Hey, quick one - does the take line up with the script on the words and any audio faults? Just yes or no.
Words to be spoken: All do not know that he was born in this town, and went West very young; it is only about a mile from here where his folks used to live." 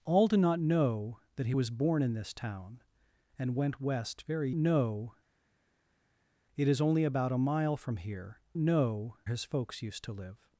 no